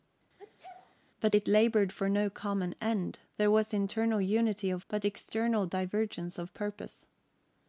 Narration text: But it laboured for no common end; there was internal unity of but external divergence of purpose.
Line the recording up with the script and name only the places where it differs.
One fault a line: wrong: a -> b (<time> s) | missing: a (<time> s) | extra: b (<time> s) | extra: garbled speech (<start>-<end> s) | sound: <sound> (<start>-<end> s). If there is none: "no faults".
sound: sneeze (0.4-1.0 s)